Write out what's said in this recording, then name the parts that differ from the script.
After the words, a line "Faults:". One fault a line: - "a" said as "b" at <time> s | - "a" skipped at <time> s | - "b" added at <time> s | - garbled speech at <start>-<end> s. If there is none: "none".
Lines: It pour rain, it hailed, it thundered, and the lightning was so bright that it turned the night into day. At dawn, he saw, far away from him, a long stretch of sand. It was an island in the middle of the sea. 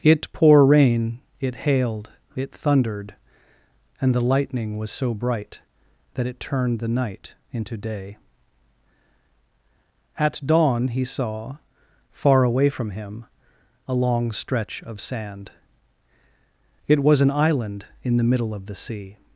It pour rain, it hailed, it thundered, and the lightning was so bright that it turned the night into day. At dawn, he saw, far away from him, a long stretch of sand. It was an island in the middle of the sea.
Faults:
none